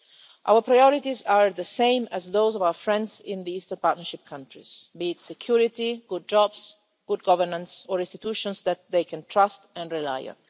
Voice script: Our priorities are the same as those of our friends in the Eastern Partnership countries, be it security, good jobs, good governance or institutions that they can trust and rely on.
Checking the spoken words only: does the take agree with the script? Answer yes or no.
yes